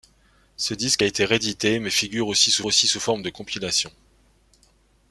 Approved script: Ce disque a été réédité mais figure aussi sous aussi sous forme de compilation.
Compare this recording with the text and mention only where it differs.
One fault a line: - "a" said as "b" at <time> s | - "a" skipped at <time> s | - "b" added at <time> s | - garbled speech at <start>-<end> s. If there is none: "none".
none